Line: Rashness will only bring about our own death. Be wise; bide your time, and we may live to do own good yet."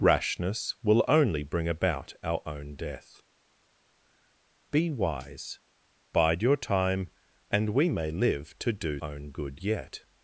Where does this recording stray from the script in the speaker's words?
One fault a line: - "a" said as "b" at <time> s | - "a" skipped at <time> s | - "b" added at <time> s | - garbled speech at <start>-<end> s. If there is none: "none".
none